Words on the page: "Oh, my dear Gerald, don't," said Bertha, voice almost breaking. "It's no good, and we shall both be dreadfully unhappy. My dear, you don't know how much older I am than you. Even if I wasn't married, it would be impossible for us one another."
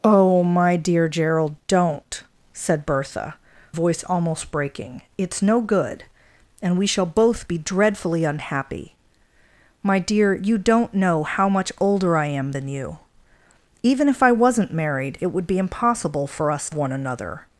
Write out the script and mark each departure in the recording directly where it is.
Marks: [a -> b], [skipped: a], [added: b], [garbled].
"Oh, my dear Gerald, don't," said Bertha, voice almost breaking. "It's no good, and we shall both be dreadfully unhappy. My dear, you don't know how much older I am than you. Even if I wasn't married, it would be impossible for us one another."